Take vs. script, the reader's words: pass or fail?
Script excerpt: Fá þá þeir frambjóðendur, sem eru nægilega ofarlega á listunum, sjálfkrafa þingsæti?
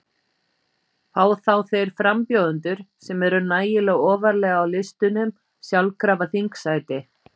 pass